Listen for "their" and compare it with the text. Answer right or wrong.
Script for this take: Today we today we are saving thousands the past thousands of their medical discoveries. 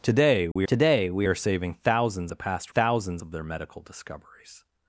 right